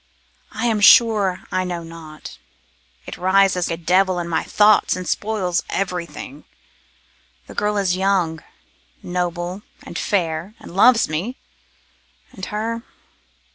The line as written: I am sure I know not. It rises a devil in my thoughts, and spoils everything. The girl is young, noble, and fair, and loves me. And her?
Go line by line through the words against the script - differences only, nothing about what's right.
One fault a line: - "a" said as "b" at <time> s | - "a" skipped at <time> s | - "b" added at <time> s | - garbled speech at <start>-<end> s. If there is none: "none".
none